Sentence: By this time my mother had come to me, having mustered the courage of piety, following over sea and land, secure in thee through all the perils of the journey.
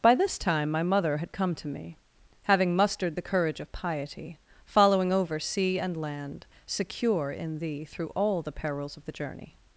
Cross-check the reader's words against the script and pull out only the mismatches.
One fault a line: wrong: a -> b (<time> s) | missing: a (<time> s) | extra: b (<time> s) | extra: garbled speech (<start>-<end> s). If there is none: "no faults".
no faults